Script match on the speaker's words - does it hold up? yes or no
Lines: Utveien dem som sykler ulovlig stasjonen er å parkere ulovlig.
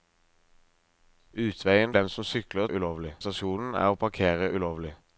yes